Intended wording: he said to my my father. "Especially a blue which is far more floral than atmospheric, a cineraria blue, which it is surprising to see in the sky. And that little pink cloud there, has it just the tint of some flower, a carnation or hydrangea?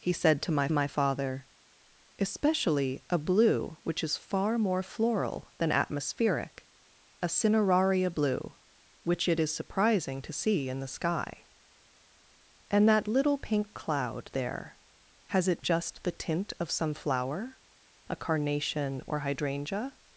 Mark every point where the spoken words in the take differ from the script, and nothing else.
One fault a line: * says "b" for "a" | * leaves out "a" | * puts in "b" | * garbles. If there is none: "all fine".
all fine